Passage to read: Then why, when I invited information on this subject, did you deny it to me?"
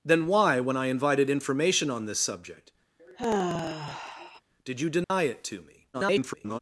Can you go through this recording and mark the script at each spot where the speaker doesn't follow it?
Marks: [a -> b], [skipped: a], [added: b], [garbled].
Then why, when I invited information on this subject, did you deny it to me?" [garbled]